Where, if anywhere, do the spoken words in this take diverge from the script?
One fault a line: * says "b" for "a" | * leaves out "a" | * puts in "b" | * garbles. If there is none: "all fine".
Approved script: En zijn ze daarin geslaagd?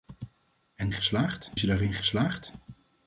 * says "geslaagd" for "zijn"